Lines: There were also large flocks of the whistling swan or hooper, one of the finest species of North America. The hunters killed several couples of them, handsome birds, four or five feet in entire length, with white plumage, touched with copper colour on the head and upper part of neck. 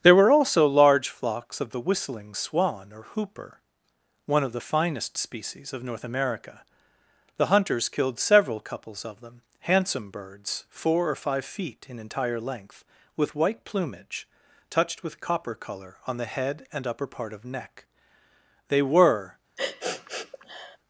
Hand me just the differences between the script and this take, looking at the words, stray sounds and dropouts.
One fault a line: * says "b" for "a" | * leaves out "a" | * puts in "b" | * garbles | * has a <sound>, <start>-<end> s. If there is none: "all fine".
* puts in "They were"
* has a sniff, 19.6-20.8 s